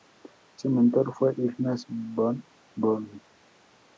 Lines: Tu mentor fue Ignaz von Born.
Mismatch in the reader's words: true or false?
true